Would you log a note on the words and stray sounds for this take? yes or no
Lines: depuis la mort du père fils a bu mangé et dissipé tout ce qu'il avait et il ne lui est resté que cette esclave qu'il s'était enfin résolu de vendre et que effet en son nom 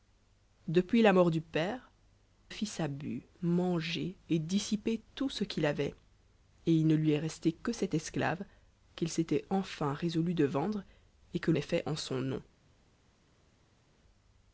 no